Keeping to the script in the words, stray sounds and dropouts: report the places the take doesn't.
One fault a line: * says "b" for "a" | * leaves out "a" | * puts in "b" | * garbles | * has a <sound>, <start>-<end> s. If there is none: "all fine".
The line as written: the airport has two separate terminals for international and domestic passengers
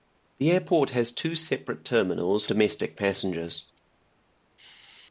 * leaves out "for international and"